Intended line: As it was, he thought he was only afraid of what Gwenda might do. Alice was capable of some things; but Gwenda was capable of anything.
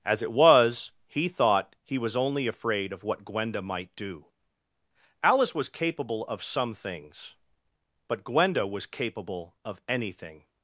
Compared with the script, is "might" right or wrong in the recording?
right